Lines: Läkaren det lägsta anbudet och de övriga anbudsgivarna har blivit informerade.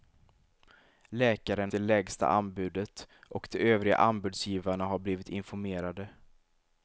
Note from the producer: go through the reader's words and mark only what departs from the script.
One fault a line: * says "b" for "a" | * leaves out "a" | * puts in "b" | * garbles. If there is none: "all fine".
all fine